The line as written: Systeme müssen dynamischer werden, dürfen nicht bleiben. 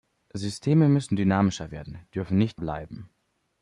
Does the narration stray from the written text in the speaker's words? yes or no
no